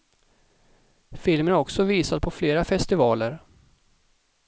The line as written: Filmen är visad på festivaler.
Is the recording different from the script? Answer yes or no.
yes